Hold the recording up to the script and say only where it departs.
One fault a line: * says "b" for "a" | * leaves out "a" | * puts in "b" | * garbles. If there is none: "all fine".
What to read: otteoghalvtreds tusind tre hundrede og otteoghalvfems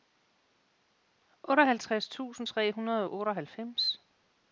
all fine